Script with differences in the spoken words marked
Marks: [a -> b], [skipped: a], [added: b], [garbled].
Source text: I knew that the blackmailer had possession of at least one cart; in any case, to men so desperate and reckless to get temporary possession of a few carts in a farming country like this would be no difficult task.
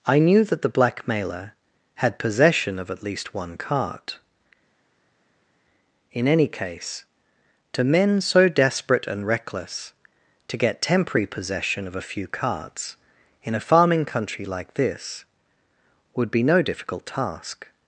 I knew that the blackmailer had possession of at least one cart; in any case, to men so desperate and reckless to get temporary possession of a few carts in a farming country like this would be no difficult task.